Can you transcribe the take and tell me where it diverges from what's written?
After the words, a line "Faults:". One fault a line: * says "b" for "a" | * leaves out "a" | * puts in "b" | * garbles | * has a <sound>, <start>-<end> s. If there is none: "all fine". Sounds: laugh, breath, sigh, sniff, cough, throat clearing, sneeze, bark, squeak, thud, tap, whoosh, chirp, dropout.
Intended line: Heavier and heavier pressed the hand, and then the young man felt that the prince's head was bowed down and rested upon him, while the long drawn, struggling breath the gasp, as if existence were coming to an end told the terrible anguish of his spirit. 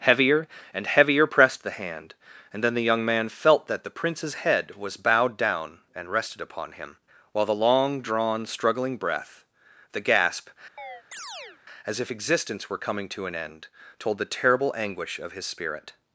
Heavier and heavier pressed the hand, and then the young man felt that the prince's head was bowed down and rested upon him, while the long drawn, struggling breath the gasp, as if existence were coming to an end told the terrible anguish of his spirit.
Faults:
* has a chirp, 10.8-11.6 s